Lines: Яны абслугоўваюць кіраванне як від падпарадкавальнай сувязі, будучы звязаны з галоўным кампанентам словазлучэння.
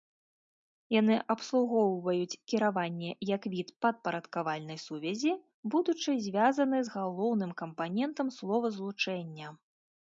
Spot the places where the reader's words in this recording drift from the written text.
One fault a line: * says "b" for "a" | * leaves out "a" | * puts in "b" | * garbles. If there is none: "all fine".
all fine